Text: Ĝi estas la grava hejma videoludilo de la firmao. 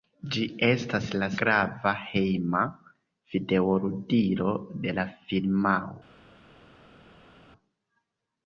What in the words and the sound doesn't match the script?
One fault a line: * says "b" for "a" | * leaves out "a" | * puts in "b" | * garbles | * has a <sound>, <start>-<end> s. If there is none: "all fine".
all fine